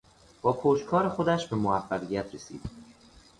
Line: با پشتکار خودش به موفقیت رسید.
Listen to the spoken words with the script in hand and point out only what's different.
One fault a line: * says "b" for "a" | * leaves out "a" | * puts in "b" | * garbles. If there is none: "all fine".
all fine